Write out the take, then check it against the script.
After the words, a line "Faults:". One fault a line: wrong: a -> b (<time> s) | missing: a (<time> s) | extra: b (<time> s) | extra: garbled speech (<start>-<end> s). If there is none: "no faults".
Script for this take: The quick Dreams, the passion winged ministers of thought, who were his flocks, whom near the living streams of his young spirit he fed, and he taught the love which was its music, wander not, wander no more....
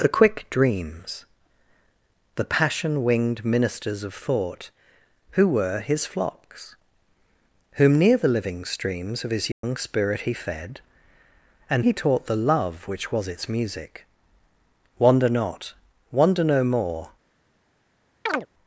The quick Dreams, the passion winged ministers of thought, who were his flocks, whom near the living streams of his young spirit he fed, and he taught the love which was its music, wander not, wander no more....
Faults:
no faults